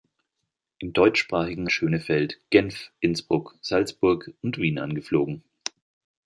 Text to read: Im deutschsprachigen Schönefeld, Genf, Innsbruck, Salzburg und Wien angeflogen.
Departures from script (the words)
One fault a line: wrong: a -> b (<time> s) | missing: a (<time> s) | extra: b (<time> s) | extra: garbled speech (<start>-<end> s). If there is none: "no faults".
no faults